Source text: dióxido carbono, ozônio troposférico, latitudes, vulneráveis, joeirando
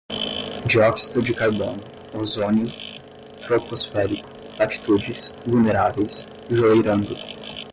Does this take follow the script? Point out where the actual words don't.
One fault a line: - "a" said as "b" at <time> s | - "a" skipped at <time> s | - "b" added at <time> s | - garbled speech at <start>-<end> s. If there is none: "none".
- "de" added at 1.2 s